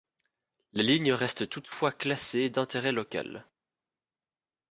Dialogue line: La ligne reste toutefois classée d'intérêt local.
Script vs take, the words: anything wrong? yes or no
no